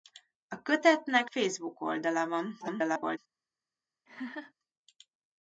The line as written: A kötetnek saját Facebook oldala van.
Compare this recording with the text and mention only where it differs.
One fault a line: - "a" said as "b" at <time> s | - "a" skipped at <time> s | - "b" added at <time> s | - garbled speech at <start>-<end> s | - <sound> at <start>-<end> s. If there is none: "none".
- "saját" skipped at 1.3 s
- garbled speech at 2.6-3.2 s
- laugh at 4.1-4.5 s